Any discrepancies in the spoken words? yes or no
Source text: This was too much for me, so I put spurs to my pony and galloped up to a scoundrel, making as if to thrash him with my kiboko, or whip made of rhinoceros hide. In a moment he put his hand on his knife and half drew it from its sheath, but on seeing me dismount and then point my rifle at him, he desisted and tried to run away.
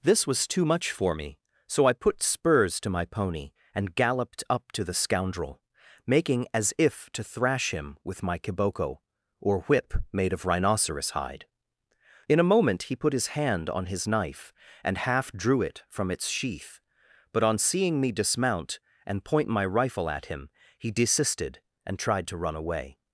yes